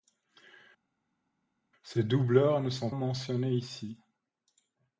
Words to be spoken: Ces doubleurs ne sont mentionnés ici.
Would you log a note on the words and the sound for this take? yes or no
no